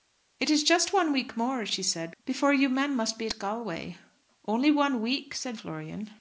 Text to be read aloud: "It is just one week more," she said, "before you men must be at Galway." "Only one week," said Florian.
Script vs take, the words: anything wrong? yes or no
no